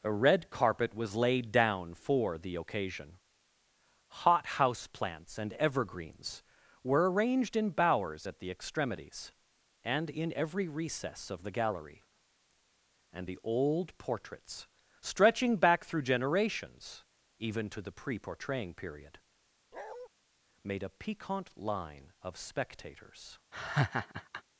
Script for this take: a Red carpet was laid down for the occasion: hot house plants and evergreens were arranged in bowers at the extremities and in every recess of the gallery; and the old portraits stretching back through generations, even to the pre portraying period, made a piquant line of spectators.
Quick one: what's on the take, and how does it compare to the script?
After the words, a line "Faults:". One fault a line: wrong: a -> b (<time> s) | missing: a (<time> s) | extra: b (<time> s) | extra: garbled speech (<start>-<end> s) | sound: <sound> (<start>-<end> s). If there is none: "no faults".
a Red carpet was laid down for the occasion: hot house plants and evergreens were arranged in bowers at the extremities and in every recess of the gallery; and the old portraits stretching back through generations, even to the pre portraying period, made a piquant line of spectators.
Faults:
sound: bark (19.7-20.1 s)
sound: laugh (23.5-24.4 s)